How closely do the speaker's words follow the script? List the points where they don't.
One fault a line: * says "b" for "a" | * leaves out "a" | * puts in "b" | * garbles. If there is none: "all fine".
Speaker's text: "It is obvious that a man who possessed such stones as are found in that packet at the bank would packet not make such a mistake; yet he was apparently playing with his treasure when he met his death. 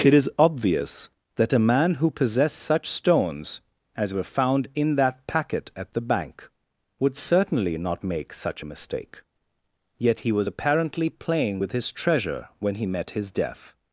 * says "were" for "are"
* says "certainly" for "packet"